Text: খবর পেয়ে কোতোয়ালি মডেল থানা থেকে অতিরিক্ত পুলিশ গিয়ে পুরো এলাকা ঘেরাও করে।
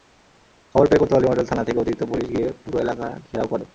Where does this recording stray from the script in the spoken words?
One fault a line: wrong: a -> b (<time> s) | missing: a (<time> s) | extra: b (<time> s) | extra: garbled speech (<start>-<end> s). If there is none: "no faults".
no faults